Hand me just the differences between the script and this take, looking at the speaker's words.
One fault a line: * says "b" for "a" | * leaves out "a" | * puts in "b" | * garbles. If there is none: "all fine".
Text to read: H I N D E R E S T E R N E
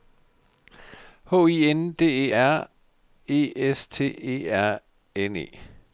all fine